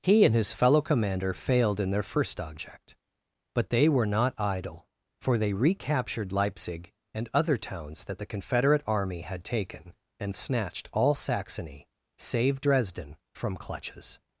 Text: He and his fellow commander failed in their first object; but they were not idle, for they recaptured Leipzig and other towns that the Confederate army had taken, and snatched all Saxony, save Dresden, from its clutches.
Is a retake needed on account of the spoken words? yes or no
yes